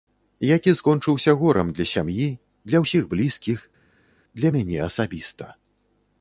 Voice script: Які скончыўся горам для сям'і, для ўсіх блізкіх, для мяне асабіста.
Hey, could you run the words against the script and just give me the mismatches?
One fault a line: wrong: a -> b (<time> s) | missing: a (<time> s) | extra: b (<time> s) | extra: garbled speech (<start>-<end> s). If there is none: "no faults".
no faults